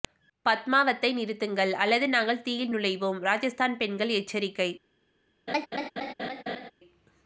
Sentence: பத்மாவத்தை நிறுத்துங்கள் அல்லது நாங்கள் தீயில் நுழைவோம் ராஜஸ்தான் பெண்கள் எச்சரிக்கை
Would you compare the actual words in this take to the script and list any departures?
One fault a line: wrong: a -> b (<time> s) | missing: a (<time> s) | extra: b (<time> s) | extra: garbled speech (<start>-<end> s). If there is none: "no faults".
no faults